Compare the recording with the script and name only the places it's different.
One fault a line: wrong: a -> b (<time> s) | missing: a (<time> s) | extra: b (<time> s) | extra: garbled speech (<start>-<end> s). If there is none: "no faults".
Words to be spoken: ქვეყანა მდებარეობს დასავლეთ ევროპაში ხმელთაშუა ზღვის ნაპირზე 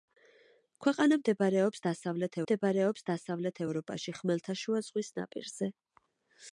extra: მდებარეობს დასავლეთ (2.4 s)